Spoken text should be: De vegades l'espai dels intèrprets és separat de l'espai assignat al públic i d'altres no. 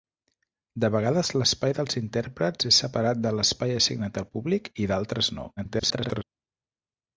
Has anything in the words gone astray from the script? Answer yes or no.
yes